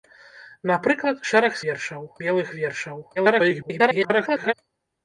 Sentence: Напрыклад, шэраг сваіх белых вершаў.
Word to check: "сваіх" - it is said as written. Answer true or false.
false